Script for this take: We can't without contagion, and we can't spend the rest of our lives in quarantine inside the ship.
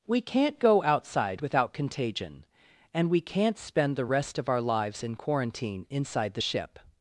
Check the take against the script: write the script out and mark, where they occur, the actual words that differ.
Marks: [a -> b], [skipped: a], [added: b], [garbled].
We can't [added: go outside] without contagion, and we can't spend the rest of our lives in quarantine inside the ship.